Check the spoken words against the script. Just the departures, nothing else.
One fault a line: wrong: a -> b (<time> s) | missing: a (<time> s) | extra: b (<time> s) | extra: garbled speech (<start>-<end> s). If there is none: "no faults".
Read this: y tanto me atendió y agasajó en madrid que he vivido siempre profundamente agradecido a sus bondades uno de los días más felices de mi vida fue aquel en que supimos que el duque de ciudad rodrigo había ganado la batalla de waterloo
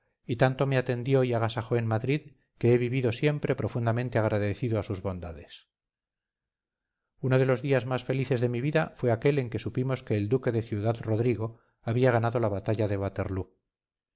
no faults